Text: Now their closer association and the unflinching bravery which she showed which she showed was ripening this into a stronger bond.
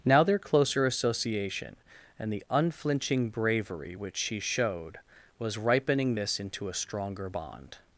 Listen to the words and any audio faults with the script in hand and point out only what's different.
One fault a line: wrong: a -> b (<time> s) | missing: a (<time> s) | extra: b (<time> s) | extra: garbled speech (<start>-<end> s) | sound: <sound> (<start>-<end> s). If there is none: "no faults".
missing: which she showed (5.0 s)